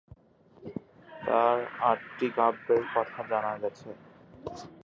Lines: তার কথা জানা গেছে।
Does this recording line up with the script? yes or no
no